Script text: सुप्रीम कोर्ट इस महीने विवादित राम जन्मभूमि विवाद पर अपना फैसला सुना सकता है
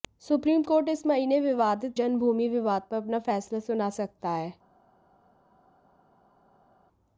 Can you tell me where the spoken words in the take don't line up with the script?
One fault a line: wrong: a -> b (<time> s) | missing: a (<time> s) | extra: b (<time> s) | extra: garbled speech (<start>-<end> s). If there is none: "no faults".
missing: राम (2.0 s)